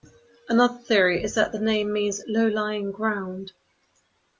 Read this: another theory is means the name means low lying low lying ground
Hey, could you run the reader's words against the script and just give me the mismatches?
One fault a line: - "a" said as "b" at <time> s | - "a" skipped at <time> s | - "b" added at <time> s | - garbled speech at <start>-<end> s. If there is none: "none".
- "means" said as "that" at 1.3 s
- "low lying" skipped at 2.9 s